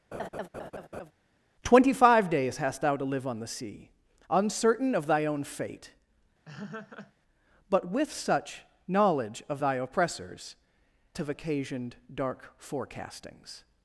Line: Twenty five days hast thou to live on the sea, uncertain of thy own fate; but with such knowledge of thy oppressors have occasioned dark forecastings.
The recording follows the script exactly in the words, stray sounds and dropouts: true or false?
false